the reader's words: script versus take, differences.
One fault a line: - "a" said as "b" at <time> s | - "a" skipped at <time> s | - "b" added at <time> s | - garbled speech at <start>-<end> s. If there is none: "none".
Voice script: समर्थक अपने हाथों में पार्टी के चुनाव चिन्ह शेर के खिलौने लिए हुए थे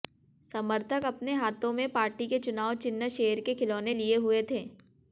none